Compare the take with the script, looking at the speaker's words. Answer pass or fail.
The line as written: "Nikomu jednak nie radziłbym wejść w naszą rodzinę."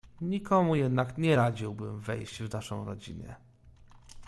pass